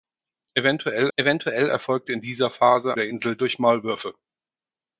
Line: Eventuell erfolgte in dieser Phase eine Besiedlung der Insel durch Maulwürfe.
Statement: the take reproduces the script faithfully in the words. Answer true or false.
false